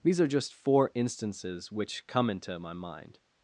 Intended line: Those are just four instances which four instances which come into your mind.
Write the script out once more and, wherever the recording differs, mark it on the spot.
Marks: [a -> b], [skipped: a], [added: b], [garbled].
[Those -> These] are just four instances which [skipped: four instances which] come into [your -> my] mind.